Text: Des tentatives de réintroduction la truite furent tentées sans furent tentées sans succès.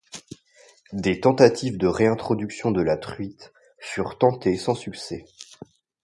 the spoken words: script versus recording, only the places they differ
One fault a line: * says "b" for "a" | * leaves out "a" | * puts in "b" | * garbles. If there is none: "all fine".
* puts in "de"
* leaves out "furent tentées sans"